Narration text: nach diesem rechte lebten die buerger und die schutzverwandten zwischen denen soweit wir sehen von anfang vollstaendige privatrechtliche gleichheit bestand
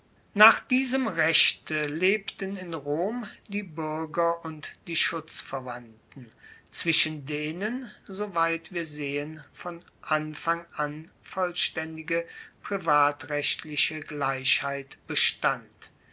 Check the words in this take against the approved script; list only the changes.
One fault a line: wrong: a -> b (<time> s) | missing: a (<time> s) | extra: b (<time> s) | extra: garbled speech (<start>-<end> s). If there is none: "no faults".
extra: in rom (2.6 s)
extra: an (10.7 s)